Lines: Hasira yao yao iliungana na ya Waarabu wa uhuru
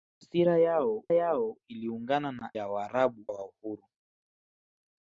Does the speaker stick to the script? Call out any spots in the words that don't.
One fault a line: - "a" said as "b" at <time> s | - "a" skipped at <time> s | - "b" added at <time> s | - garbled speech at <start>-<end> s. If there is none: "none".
none